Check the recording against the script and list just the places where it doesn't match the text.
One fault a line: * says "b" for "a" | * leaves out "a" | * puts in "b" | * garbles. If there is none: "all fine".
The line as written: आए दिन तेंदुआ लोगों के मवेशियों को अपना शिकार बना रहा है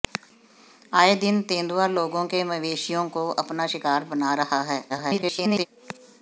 * garbles